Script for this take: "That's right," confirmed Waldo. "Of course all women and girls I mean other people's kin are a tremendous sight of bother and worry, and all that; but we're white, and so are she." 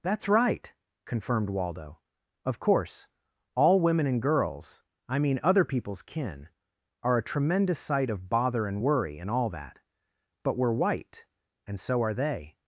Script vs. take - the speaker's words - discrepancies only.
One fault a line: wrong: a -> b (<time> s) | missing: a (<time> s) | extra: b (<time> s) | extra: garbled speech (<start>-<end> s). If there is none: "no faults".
wrong: she -> they (12.1 s)